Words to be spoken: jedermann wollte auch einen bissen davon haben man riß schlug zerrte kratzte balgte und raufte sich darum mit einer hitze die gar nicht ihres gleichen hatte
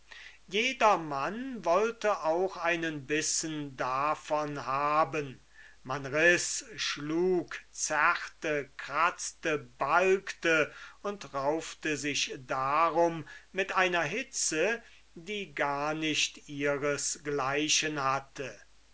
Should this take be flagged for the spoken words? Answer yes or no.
no